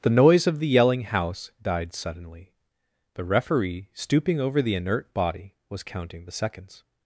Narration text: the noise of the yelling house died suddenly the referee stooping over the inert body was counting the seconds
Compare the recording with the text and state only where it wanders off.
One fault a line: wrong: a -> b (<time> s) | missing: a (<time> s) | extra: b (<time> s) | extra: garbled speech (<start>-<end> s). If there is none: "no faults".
no faults